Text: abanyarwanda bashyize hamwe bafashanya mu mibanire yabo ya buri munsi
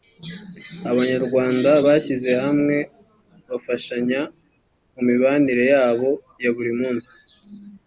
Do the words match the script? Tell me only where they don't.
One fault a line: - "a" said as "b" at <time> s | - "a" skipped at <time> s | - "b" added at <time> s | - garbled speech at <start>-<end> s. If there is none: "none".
none